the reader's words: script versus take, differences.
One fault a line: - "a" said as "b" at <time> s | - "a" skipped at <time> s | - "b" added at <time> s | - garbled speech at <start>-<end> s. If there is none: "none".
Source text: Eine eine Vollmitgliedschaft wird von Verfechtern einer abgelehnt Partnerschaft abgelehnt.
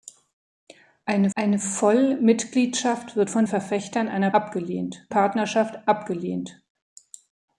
none